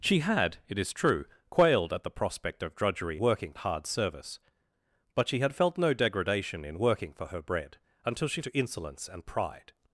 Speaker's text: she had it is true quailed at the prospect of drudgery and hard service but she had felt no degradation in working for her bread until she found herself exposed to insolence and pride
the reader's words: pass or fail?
fail